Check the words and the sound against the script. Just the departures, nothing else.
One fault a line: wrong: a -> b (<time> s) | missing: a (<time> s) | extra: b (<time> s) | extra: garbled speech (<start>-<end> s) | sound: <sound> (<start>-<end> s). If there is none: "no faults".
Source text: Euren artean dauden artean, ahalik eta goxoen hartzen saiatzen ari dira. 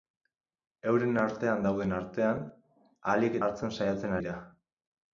missing: eta goxoen (3.4 s)
missing: ari (4.2 s)